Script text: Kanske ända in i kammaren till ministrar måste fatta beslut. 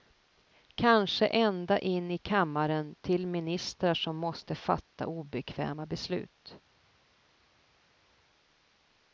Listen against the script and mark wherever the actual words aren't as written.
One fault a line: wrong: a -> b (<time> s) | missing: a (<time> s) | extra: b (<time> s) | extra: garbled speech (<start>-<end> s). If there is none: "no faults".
extra: som (3.9 s)
extra: obekväma (5.1 s)